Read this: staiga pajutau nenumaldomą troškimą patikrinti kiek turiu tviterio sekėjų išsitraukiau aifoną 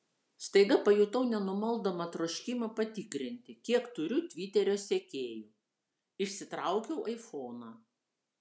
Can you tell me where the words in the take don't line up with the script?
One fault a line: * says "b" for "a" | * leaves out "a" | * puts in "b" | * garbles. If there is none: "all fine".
all fine